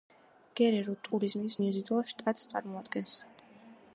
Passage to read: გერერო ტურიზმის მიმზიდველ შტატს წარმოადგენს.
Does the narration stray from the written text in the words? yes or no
no